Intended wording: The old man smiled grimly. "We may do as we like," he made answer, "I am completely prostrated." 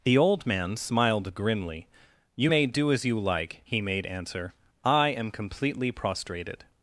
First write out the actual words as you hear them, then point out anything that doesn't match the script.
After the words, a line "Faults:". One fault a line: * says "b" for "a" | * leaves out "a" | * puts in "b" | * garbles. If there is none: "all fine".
The old man smiled grimly. "You may do as you like," he made answer, "I am completely prostrated."
Faults:
* says "You" for "We"
* says "you" for "we"